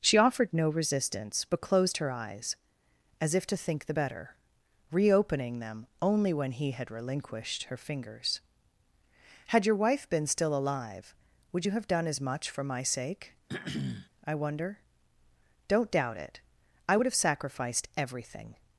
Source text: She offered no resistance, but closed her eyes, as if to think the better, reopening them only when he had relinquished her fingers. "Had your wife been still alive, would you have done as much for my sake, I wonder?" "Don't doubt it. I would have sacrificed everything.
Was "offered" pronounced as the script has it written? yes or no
yes